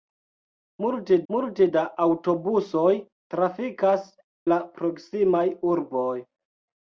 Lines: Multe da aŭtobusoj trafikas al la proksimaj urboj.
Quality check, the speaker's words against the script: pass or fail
fail